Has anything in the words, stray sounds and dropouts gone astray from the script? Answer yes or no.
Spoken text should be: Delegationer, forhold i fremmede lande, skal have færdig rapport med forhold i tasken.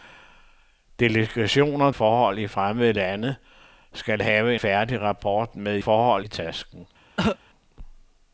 yes